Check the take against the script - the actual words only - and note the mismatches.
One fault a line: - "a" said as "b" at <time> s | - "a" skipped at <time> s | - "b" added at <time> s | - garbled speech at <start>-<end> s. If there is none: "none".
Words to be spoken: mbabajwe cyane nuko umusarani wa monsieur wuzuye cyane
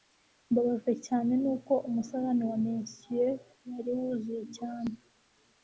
- "wari" added at 3.7 s